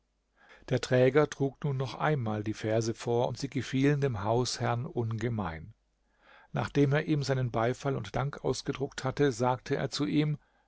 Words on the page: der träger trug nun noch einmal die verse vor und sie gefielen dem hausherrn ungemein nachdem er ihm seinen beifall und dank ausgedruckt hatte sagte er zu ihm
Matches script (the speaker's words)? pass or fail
pass